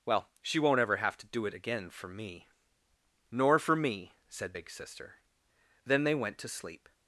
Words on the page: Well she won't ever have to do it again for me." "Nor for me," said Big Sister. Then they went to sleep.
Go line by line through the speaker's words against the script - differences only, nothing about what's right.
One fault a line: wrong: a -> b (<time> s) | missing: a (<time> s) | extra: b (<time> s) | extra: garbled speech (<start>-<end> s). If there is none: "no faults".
no faults